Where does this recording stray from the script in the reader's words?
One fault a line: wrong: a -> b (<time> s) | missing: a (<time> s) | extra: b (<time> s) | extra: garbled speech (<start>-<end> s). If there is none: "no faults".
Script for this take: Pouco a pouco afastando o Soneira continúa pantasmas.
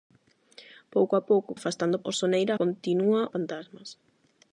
no faults